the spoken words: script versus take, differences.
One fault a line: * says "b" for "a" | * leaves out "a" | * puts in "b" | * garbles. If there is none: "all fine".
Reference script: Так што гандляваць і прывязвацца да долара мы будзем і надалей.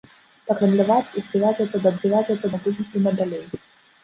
* leaves out "што"
* says "прывязвацца" for "долара"